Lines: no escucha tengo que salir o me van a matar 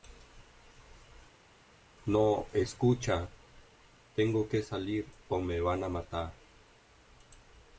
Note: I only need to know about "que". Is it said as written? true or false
true